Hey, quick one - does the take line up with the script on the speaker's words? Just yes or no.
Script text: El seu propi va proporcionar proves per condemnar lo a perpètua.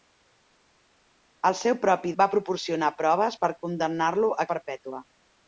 yes